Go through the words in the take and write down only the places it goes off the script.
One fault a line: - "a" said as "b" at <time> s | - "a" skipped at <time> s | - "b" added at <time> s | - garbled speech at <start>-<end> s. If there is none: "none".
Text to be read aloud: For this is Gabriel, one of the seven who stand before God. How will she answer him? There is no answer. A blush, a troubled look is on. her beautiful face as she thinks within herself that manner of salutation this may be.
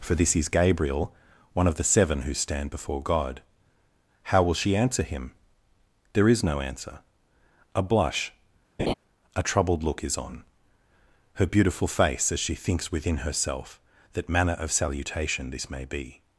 none